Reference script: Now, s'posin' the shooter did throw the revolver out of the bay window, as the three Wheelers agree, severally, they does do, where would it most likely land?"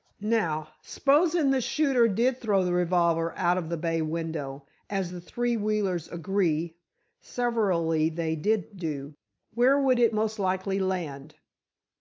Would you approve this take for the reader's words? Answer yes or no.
no